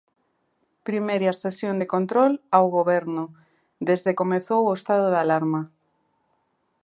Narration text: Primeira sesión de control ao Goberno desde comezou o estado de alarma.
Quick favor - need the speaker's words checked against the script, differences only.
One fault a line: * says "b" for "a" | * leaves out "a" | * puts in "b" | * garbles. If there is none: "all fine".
all fine